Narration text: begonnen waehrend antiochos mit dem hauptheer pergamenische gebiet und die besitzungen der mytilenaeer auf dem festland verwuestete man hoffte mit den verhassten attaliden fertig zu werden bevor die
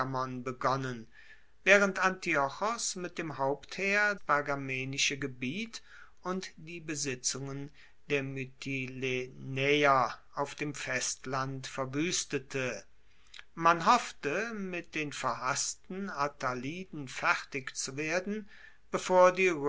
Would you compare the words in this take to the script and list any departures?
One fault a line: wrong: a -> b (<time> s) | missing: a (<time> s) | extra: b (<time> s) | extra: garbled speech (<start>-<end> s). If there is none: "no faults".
no faults